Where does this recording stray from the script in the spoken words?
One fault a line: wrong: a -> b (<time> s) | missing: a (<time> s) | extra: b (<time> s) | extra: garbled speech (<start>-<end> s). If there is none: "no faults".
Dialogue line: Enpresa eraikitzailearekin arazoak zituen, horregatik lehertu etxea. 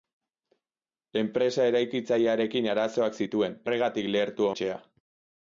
no faults